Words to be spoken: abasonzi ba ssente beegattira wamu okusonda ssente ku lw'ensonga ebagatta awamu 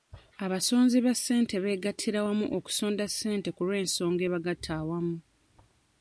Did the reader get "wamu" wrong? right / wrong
right